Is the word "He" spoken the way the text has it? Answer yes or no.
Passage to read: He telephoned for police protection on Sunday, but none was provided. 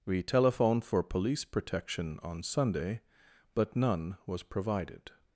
no